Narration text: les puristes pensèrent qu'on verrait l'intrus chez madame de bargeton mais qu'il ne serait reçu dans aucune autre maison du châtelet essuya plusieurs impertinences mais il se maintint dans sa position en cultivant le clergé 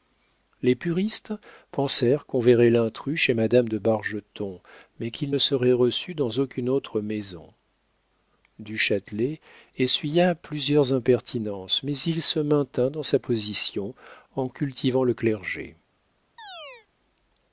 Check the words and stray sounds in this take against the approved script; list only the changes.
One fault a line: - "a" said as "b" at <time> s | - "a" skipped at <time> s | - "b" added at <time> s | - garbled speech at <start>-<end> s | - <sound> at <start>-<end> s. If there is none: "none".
- chirp at 16.4-16.9 s